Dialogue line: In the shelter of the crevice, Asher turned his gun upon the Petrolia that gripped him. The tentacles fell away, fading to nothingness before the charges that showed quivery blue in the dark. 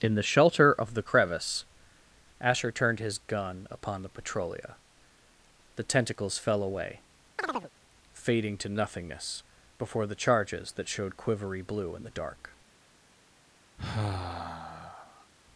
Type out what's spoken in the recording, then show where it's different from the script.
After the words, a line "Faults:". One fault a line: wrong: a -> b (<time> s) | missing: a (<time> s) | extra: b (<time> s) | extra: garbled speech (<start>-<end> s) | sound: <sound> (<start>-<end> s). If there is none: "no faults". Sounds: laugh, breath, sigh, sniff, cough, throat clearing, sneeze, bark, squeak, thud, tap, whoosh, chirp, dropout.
In the shelter of the crevice, Asher turned his gun upon the Petrolia. The tentacles fell away, fading to nothingness before the charges that showed quivery blue in the dark.
Faults:
missing: that gripped him (4.8 s)
sound: chirp (7.4-7.7 s)
sound: sigh (13.8-15.3 s)